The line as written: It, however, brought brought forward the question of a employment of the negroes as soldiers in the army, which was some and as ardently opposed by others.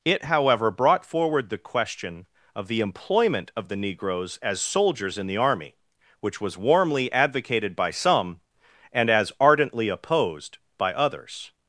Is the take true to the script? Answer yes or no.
no